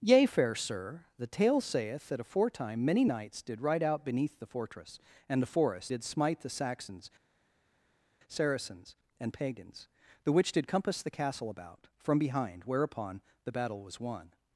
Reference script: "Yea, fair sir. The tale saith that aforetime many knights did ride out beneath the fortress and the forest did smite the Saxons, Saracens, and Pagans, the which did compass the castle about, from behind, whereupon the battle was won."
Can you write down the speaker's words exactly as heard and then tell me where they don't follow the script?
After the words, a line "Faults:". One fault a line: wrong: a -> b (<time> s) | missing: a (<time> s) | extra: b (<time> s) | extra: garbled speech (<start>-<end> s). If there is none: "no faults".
"Yea, fair sir. The tale saith that aforetime many knights did ride out beneath the fortress and the forest did smite the Saxons, Saracens, and Pagans, the which did compass the castle about, from behind, whereupon the battle was won."
Faults:
no faults